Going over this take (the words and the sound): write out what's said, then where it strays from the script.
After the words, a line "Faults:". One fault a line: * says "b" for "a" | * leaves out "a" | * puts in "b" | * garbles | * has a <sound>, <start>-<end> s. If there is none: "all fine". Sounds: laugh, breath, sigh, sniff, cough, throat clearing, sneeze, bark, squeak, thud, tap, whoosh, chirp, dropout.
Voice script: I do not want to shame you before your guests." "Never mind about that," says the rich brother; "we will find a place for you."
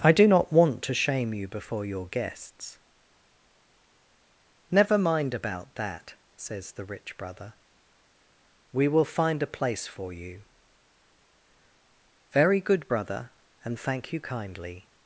I do not want to shame you before your guests." "Never mind about that," says the rich brother; "we will find a place for you." "Very good, brother, and thank you kindly
Faults:
* puts in "Very good brother and thank you kindly"